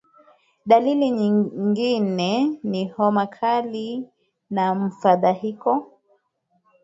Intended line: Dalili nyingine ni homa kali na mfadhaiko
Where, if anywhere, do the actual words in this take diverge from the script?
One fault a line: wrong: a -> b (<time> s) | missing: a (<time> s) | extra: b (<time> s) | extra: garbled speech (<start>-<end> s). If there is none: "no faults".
no faults